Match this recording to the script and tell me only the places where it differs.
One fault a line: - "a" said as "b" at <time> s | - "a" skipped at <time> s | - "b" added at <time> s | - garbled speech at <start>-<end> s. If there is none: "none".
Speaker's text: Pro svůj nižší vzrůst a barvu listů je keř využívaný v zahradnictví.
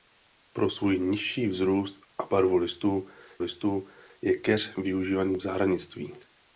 - "listů" added at 3.4 s